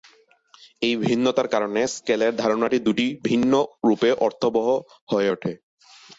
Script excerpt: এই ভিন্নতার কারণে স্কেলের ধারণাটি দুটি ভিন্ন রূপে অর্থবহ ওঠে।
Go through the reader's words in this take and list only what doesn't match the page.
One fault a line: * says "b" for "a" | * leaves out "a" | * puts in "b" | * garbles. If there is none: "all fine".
* puts in "হয়ে"